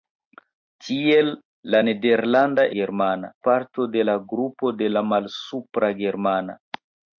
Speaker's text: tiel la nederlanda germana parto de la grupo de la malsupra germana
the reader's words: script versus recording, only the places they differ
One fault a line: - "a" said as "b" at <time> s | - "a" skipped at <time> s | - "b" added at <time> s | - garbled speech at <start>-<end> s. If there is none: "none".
none